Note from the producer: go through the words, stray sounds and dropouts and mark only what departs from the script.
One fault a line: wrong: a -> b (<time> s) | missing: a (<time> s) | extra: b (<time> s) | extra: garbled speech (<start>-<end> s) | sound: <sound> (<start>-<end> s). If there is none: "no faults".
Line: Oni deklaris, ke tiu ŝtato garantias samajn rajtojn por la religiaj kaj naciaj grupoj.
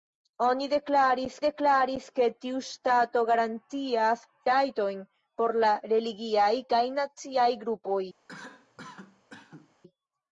extra: deklaris (1.4 s)
missing: samajn (4.2 s)
sound: cough (8.3-9.8 s)